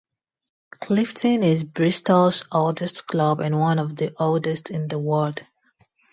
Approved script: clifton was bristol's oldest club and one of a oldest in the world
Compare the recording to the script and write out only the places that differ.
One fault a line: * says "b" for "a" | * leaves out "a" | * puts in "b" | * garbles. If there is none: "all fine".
* says "is" for "was"
* says "the" for "a"